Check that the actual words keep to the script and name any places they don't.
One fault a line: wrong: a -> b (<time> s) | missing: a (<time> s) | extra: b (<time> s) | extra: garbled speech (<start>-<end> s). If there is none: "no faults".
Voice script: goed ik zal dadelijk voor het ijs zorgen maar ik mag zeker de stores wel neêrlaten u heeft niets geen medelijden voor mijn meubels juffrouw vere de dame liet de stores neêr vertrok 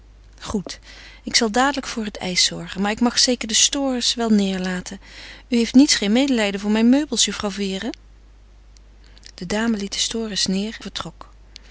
no faults